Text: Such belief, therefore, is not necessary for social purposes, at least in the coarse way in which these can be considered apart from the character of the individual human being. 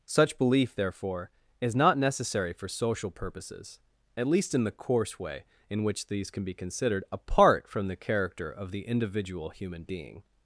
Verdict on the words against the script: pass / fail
pass